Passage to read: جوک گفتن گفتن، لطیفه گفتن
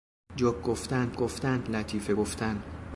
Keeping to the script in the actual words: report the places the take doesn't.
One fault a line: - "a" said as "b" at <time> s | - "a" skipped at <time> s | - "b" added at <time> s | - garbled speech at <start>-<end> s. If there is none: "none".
none